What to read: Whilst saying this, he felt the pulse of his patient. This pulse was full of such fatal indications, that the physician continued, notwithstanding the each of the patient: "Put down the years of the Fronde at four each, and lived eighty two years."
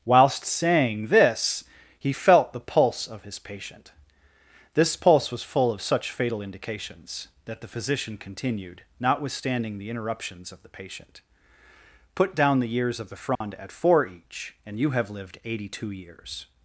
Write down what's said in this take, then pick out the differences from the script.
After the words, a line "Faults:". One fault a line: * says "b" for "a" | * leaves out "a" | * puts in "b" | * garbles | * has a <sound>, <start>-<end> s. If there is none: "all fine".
Whilst saying this, he felt the pulse of his patient. This pulse was full of such fatal indications, that the physician continued, notwithstanding the interruptions of the patient: "Put down the years of the Fronde at four each, and you have lived eighty two years."
Faults:
* says "interruptions" for "each"
* has a dropout, 13.4-13.4 s
* puts in "you have"